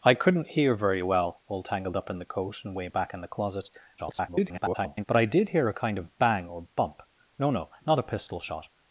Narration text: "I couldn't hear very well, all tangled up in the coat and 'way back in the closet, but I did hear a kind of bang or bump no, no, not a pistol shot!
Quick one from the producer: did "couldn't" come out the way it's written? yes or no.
yes